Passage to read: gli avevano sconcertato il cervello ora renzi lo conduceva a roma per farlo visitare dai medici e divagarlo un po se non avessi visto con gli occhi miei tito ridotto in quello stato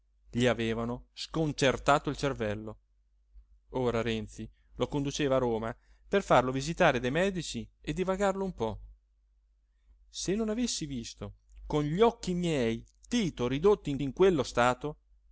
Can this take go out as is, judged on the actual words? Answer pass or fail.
fail